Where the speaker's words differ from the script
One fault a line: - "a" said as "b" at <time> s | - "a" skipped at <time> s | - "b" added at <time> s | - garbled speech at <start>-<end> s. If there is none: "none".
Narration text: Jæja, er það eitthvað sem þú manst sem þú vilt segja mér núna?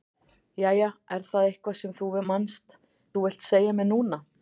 - "sem" skipped at 2.8 s